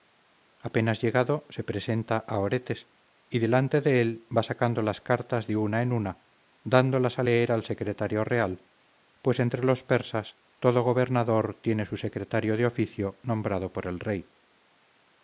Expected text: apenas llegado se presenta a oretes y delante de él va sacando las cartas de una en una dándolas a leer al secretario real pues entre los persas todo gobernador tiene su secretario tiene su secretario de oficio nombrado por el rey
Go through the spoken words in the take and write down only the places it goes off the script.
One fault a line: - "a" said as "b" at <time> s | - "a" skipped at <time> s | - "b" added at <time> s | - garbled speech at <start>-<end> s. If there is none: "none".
- "tiene su secretario" skipped at 12.6 s